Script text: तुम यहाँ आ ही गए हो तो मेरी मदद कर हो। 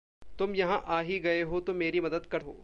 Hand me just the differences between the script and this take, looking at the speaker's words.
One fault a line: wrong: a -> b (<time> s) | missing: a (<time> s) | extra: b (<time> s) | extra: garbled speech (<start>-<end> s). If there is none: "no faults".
no faults